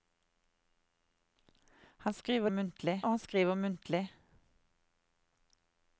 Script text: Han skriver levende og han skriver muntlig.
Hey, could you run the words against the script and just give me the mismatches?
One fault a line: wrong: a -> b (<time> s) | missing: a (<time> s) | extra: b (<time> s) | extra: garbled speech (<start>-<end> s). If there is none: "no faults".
wrong: levende -> muntlig (2.5 s)